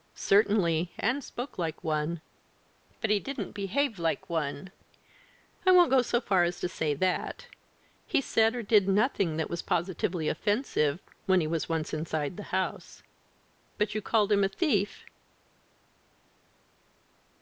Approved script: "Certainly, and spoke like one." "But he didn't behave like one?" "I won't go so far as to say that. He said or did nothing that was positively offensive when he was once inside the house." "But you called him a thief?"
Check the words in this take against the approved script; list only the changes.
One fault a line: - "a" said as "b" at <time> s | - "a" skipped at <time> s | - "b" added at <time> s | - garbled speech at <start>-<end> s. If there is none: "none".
none